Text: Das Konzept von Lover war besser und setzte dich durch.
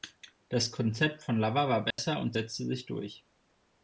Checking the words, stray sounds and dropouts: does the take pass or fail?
fail